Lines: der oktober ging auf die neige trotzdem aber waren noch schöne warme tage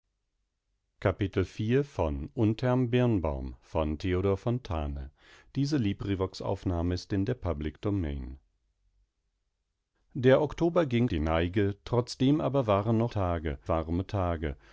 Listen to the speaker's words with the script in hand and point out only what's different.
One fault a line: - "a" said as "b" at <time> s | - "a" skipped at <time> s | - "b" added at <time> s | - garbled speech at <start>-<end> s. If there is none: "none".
- "auf" skipped at 11.1 s
- "schöne" said as "tage" at 13.1 s